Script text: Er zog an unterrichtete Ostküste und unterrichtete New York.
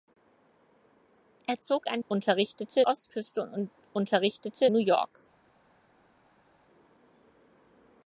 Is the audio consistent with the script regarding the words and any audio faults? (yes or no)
yes